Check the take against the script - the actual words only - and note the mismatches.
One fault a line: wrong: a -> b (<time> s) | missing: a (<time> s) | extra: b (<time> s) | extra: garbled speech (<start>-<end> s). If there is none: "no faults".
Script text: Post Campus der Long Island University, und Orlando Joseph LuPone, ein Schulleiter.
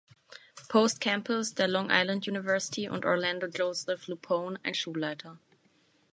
no faults